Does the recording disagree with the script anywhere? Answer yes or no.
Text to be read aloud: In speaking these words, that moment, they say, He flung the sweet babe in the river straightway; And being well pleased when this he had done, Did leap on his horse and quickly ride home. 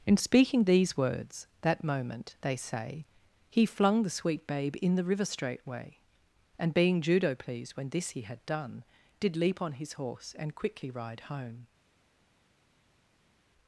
yes